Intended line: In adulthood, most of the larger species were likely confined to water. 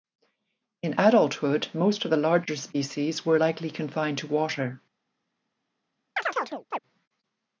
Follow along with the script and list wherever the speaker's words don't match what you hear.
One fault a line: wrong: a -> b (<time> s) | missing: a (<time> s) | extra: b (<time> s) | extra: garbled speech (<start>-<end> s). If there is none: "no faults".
no faults